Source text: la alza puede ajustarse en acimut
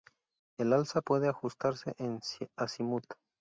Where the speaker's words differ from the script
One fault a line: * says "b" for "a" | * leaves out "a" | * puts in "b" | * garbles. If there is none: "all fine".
* says "el" for "la"